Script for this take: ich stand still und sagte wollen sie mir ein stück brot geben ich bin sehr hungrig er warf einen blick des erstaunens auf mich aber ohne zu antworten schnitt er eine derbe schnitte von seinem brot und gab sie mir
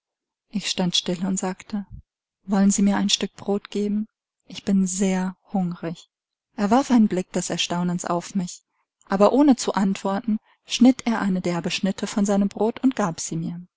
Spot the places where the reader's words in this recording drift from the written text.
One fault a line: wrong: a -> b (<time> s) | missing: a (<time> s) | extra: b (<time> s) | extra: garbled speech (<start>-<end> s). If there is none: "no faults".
no faults